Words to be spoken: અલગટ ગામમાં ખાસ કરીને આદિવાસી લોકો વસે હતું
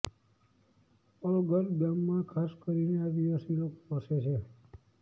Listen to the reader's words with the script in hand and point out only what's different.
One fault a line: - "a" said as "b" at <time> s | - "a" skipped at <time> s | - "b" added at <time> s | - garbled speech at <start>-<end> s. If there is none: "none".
- "હતું" said as "છે" at 4.2 s